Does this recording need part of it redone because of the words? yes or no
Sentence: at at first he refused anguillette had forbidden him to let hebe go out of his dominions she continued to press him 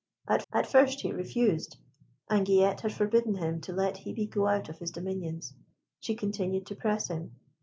no